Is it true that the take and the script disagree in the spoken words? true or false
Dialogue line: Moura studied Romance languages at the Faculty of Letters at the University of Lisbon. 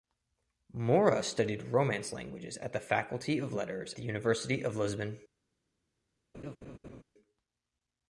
true